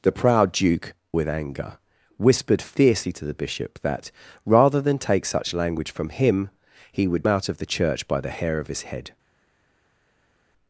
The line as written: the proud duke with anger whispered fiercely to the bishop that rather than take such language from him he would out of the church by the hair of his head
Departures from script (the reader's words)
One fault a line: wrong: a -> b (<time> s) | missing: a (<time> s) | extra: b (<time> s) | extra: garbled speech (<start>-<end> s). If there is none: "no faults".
no faults